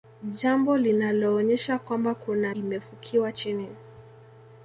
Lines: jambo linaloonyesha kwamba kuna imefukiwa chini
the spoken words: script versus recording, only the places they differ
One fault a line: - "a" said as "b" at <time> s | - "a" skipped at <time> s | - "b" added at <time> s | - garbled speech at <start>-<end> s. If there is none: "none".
none